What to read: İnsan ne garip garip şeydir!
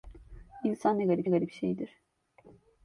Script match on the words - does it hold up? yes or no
yes